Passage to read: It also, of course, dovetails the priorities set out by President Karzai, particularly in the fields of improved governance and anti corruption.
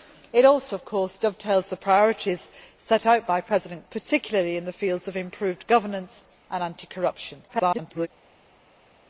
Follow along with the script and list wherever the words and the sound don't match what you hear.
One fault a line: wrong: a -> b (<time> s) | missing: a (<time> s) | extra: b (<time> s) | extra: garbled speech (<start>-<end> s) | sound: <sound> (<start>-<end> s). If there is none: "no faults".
missing: Karzai (3.9 s)
extra: garbled speech (7.5-8.1 s)